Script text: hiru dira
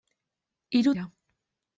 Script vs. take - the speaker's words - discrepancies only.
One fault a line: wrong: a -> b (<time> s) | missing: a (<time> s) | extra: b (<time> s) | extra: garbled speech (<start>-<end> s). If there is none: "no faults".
no faults